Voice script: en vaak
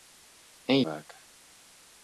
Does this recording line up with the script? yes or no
yes